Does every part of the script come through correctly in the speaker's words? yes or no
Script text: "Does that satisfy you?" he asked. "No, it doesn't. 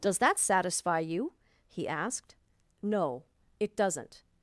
yes